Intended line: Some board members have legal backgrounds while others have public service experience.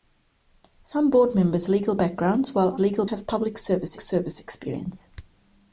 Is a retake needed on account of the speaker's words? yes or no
yes